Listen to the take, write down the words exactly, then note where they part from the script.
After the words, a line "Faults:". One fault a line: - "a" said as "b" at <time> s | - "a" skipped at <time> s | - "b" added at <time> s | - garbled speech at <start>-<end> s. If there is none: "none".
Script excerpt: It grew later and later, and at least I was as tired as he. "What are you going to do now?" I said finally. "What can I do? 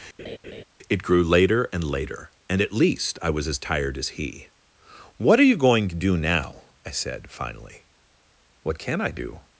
It grew later and later, and at least I was as tired as he. "What are you going to do now?" I said finally. "What can I do?
Faults:
none